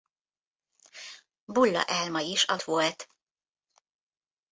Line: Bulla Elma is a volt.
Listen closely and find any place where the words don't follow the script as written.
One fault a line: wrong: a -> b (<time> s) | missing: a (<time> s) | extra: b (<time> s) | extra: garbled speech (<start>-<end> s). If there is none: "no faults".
no faults